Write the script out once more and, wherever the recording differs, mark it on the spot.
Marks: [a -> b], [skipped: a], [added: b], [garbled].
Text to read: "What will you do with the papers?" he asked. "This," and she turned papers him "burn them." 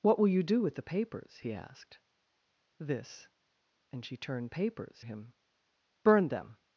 "What will you do with the papers?" he asked. "This," and she turned papers him "burn them."